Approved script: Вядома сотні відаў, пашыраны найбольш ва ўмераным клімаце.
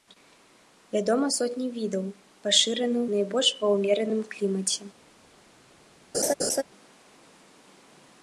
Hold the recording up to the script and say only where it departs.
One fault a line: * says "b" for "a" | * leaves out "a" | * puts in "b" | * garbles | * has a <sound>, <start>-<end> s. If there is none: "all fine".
* has a laugh, 6.1-6.6 s